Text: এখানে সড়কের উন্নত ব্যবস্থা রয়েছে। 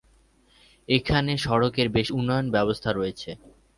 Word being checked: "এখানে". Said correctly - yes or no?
yes